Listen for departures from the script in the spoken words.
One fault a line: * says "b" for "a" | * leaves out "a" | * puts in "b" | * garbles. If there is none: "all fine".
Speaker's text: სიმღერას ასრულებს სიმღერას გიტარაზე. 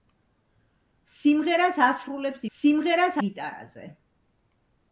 all fine